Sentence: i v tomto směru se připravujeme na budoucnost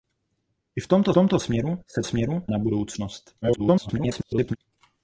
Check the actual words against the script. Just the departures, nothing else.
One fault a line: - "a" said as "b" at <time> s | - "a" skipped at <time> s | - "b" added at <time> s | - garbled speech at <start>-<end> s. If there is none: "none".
- "tomto" added at 1.1 s
- "připravujeme" said as "směru" at 2.0 s
- garbled speech at 3.4-4.6 s